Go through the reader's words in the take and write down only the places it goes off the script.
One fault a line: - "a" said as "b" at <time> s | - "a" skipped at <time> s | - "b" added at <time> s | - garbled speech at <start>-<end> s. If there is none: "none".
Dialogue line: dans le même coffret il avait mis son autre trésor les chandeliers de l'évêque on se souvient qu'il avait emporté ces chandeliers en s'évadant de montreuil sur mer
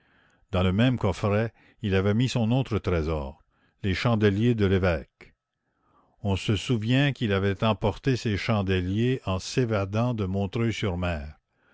none